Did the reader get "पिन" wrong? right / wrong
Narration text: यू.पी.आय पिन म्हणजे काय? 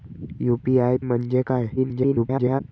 wrong